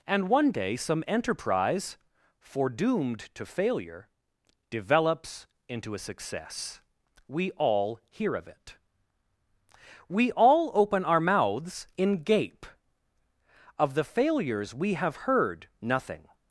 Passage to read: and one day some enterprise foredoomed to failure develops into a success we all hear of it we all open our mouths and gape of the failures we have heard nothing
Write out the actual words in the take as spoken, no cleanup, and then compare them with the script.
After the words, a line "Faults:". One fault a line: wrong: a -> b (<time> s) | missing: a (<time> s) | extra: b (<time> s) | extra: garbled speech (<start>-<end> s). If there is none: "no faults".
and one day some enterprise foredoomed to failure develops into a success we all hear of it we all open our mouths in gape of the failures we have heard nothing
Faults:
wrong: and -> in (12.0 s)